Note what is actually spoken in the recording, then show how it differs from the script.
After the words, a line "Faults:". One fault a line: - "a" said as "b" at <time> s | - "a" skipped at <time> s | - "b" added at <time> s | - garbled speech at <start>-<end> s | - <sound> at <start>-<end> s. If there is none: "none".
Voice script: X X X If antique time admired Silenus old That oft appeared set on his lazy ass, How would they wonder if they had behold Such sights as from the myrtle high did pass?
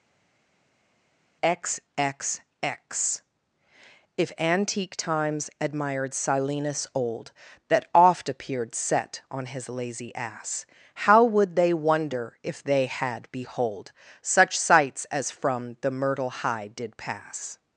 X X X If antique times admired Silenus old That oft appeared set on his lazy ass, How would they wonder if they had behold Such sights as from the myrtle high did pass?
Faults:
- "time" said as "times" at 5.0 s